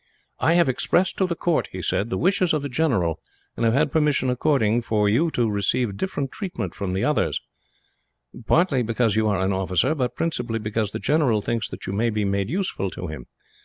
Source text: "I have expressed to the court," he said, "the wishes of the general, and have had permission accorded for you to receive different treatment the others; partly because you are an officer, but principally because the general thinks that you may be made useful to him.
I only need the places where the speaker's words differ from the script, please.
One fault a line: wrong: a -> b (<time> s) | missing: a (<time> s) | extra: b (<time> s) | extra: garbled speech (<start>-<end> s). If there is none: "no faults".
extra: from (6.7 s)